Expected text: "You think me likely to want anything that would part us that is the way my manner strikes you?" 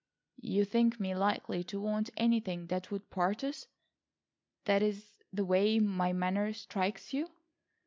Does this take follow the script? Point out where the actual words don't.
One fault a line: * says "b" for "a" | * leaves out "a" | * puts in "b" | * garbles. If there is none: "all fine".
all fine